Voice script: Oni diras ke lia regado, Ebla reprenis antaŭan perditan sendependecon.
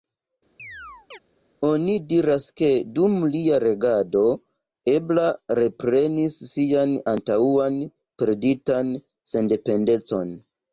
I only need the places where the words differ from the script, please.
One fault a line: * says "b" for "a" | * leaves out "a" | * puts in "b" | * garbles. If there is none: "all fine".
* puts in "dum"
* puts in "sian"